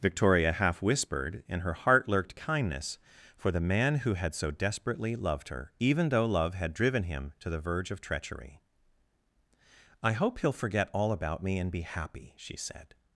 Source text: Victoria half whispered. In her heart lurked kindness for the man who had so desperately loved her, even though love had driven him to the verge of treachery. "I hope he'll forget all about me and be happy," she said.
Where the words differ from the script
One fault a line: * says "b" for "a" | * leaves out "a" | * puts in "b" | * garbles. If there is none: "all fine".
all fine